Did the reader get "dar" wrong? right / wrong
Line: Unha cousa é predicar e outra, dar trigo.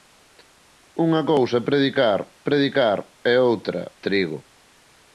wrong